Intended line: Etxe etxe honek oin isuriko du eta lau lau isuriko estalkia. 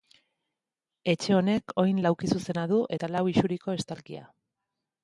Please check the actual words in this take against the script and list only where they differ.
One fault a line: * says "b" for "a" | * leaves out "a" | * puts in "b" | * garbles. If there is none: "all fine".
* leaves out "etxe"
* says "laukizuzena" for "isuriko"
* leaves out "lau"